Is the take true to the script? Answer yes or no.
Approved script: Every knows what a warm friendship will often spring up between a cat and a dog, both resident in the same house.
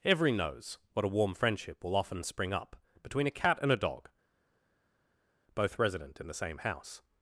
yes